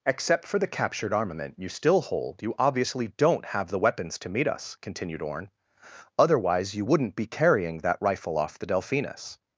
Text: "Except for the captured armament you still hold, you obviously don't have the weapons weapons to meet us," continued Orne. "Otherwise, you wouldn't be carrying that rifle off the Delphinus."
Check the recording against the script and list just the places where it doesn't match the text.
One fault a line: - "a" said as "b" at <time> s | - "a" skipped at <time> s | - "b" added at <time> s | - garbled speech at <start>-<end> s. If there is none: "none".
- "weapons" skipped at 4.2 s